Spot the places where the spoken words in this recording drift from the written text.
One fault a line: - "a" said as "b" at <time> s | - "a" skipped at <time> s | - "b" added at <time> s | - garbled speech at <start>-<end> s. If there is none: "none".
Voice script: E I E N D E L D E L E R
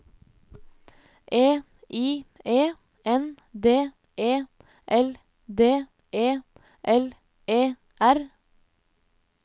none